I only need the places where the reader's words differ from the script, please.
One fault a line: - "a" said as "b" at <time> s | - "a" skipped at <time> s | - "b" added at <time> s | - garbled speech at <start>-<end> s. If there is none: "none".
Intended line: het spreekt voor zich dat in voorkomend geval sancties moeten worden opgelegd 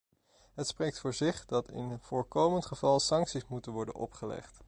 none